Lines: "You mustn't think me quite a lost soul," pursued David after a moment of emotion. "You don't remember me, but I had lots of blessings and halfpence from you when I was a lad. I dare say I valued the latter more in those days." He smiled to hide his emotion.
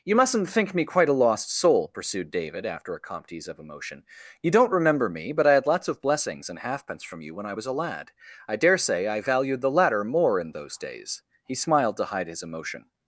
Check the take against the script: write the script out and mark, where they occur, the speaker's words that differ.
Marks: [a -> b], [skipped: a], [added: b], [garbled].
"You mustn't think me quite a lost soul," pursued David after a [moment -> comptes] of emotion. "You don't remember me, but I had lots of blessings and halfpence from you when I was a lad. I dare say I valued the latter more in those days." He smiled to hide his emotion.